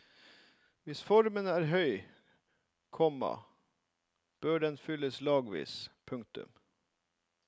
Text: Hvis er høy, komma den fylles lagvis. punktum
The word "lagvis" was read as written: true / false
true